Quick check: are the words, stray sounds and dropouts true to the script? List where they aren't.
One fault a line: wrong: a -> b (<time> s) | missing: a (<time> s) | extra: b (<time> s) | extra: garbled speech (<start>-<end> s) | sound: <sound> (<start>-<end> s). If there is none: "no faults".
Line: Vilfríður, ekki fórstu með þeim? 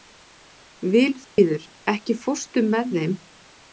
sound: dropout (1.2-1.4 s)